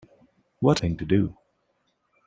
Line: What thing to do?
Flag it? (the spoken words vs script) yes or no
no